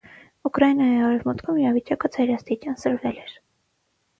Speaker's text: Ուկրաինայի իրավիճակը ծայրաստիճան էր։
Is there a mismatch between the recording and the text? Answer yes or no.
yes